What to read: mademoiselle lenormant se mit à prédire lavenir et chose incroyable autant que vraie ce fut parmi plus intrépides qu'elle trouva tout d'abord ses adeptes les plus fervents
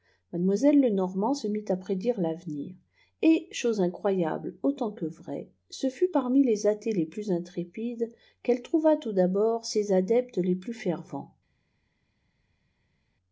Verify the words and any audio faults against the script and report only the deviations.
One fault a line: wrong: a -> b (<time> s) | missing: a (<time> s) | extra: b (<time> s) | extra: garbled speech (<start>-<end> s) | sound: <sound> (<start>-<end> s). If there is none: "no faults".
extra: les athées les (6.4 s)